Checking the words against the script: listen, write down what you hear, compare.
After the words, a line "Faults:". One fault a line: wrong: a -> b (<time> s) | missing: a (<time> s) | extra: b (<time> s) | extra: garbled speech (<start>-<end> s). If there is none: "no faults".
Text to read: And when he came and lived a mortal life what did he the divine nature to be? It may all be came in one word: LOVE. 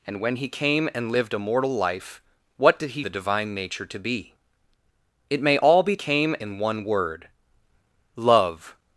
And when he came and lived a mortal life what did he the divine nature to be? It may all be came in one word: LOVE.
Faults:
no faults